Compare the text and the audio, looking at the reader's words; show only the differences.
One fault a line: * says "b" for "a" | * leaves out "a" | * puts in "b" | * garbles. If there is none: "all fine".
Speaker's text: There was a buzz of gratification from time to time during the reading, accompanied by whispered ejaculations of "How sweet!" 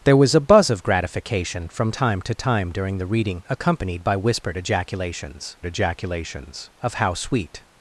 * puts in "ejaculations"